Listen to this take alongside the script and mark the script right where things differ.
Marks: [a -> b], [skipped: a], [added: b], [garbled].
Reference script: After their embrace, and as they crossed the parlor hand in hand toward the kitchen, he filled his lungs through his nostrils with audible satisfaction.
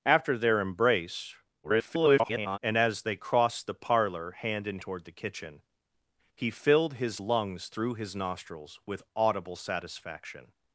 After their embrace, [garbled] and as they crossed the parlor hand in [skipped: hand] toward the kitchen, he filled his lungs through his nostrils with audible satisfaction.